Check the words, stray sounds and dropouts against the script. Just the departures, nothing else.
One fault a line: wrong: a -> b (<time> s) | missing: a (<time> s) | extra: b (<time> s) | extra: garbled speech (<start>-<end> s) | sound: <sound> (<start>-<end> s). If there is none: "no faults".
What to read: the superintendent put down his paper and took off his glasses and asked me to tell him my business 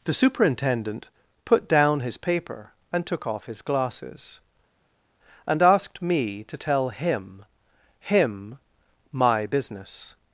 extra: him (8.0 s)